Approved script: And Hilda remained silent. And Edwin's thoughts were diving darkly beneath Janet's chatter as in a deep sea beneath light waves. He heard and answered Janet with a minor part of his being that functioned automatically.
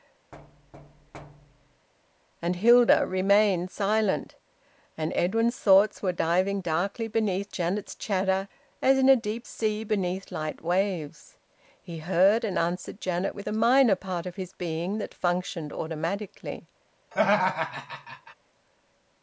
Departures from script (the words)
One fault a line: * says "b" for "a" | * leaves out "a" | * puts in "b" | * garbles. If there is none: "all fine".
all fine